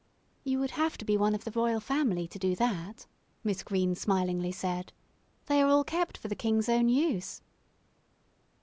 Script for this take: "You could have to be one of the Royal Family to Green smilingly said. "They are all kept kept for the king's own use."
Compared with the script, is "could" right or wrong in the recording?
wrong